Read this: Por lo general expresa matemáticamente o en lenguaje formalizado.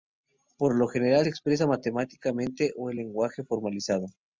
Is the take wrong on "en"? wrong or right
right